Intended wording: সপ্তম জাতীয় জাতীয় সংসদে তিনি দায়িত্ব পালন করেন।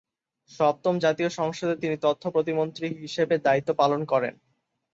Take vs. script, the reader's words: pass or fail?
fail